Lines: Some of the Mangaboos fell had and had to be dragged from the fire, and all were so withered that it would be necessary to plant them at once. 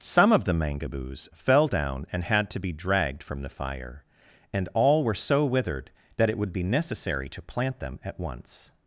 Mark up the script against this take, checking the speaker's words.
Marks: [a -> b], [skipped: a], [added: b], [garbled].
Some of the Mangaboos fell [had -> down] and had to be dragged from the fire, and all were so withered that it would be necessary to plant them at once.